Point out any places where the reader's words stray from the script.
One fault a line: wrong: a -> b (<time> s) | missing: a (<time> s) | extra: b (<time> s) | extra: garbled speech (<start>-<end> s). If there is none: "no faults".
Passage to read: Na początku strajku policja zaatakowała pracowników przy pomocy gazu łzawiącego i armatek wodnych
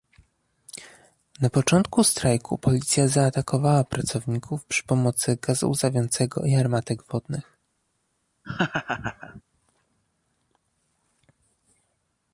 no faults